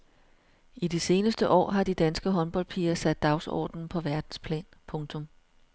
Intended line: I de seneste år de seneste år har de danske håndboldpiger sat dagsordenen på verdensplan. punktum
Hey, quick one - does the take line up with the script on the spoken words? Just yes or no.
no